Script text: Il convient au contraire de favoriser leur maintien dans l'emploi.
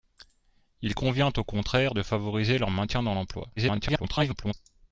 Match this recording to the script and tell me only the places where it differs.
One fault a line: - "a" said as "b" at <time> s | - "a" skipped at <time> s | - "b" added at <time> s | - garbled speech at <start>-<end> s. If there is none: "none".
- garbled speech at 3.6-4.5 s